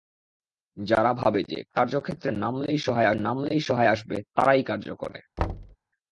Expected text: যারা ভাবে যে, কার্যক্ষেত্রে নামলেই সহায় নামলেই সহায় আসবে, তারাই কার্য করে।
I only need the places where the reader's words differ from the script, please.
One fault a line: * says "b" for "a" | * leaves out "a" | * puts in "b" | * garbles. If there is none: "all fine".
all fine